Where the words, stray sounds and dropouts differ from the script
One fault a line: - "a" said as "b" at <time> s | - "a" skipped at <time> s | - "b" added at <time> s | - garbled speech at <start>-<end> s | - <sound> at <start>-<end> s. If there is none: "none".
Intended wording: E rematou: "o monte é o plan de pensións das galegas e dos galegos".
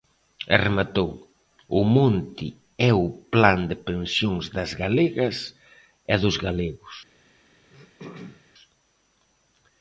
- throat clearing at 7.7-8.4 s